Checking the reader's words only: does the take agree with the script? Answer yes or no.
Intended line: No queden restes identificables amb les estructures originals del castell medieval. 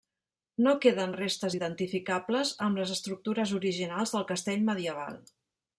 yes